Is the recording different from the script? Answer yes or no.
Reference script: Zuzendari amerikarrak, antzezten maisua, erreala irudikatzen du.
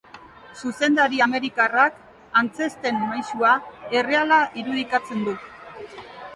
no